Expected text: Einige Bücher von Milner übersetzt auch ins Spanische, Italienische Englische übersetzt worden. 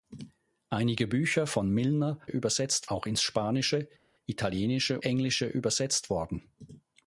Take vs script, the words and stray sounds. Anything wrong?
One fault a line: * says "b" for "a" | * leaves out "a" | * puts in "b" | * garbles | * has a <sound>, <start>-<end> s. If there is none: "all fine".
all fine